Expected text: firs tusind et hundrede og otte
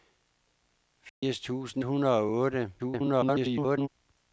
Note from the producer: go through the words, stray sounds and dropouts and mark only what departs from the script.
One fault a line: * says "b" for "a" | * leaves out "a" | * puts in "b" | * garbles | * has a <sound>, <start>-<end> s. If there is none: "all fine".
* has a dropout, 1.1-1.2 s
* leaves out "et"
* garbles